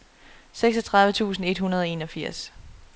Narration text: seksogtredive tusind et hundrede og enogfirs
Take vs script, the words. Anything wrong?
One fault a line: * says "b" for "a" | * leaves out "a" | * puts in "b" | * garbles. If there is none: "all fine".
all fine